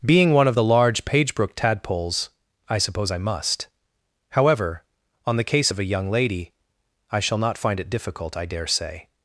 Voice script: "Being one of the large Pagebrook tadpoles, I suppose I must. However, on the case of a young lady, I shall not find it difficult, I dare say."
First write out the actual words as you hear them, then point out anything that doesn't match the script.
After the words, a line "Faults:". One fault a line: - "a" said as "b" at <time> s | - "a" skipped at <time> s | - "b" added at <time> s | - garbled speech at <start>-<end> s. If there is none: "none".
"Being one of the large Pagebrook tadpoles, I suppose I must. However, on the case of a young lady, I shall not find it difficult, I dare say."
Faults:
none